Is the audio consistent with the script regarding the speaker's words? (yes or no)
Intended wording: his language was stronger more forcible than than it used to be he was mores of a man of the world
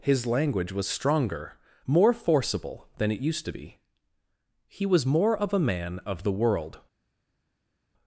no